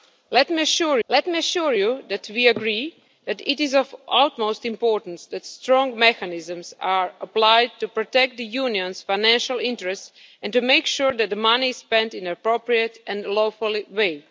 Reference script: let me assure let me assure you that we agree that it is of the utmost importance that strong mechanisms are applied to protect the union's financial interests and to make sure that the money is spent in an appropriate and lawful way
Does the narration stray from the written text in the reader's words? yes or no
no